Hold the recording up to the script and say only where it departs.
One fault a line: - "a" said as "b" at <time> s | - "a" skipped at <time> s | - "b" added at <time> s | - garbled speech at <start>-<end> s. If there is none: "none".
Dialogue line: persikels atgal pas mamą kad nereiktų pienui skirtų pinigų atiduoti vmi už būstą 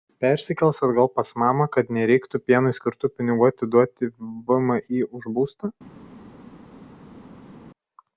none